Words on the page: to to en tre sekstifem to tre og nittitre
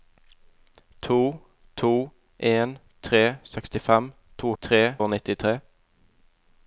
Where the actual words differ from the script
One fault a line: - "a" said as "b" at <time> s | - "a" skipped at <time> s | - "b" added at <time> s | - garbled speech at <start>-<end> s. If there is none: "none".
none